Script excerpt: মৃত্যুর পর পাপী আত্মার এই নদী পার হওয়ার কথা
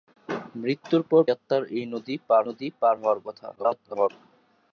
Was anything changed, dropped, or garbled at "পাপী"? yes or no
yes